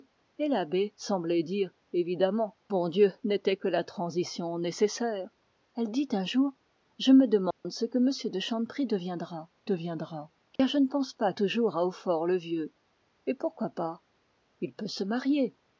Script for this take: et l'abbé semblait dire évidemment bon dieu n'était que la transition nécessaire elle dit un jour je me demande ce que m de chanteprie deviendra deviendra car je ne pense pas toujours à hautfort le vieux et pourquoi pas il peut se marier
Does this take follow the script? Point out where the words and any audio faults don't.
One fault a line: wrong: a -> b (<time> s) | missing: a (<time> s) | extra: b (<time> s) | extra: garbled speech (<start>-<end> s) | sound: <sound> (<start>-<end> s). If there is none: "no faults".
sound: dropout (7.5-7.6 s)
sound: dropout (10.6-10.6 s)